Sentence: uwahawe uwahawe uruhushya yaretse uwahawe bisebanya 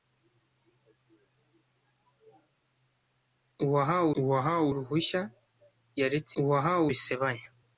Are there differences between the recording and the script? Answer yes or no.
no